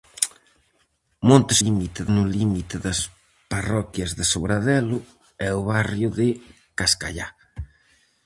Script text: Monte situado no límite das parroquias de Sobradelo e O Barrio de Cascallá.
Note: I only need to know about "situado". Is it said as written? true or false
false